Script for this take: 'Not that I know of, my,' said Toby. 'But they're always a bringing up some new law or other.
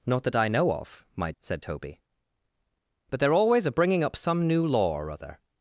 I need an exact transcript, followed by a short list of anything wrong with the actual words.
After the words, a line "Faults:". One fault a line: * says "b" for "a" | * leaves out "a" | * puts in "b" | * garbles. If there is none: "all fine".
'Not that I know of, my,' said Toby. 'But they're always a bringing up some new law or other.
Faults:
all fine